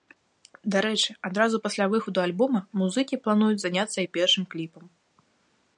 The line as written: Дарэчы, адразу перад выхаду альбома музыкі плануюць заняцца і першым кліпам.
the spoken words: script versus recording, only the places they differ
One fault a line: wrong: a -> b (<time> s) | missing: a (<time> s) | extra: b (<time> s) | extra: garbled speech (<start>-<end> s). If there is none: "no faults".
wrong: перад -> пасля (1.6 s)